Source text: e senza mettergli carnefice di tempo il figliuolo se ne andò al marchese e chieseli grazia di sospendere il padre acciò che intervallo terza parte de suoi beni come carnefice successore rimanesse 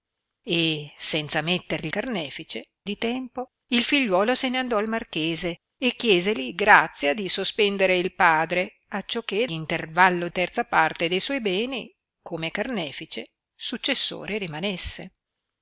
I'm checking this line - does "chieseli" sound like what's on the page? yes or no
yes